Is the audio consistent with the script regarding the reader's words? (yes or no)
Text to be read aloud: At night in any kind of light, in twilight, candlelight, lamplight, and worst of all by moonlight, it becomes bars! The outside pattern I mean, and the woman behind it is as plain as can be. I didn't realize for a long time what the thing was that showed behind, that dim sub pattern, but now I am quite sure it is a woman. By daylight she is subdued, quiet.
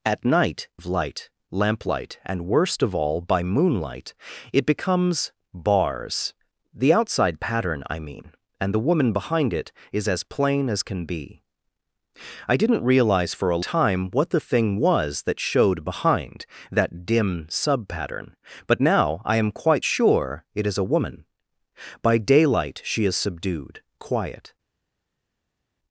no